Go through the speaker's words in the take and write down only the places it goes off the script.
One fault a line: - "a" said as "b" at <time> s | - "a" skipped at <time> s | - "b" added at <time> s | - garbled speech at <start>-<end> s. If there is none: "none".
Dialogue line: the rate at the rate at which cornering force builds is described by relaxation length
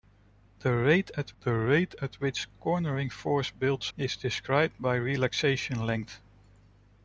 none